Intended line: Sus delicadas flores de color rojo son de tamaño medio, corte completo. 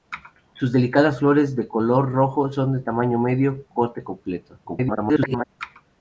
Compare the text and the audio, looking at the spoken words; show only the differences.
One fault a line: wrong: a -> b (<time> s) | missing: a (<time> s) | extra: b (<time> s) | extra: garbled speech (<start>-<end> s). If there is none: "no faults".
extra: garbled speech (4.6-5.5 s)